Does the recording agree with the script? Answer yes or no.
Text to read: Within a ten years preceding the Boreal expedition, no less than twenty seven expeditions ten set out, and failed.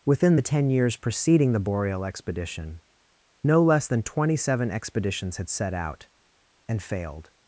no